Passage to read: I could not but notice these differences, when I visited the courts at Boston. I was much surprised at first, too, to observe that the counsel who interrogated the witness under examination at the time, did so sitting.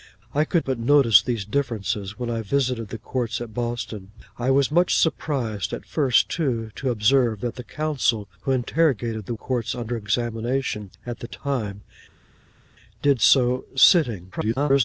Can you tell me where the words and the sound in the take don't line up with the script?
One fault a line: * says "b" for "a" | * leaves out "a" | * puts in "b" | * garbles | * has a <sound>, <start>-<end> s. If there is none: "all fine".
* leaves out "not"
* says "courts" for "witness"
* garbles